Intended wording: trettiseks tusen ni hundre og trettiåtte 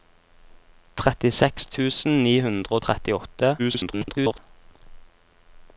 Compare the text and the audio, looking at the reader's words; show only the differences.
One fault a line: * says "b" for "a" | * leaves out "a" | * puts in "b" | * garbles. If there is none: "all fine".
* garbles